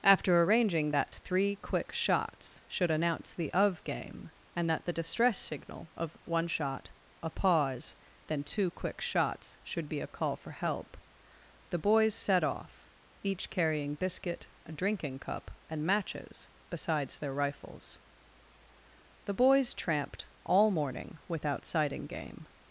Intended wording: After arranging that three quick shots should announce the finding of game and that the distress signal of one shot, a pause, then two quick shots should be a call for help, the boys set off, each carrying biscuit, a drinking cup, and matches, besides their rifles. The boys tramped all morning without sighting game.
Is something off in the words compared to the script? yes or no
yes